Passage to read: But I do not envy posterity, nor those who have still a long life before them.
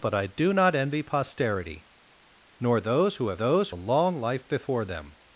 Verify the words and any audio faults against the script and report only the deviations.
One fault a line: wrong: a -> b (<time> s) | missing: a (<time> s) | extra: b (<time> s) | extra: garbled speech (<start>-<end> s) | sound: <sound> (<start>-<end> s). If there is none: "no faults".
wrong: still -> those (3.4 s)